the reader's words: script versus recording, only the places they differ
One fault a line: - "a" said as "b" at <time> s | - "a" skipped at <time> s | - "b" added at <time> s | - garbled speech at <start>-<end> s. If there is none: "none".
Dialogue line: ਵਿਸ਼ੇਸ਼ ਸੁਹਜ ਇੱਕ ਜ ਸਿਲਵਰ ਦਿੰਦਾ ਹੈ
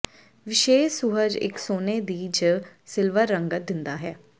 - "ਸੋਨੇ ਦੀ" added at 1.6 s
- "ਰੰਗਤ" added at 3.3 s